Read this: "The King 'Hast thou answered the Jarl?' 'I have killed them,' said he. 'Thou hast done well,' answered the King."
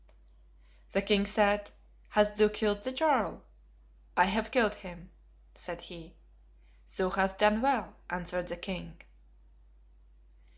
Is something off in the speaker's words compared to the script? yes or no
yes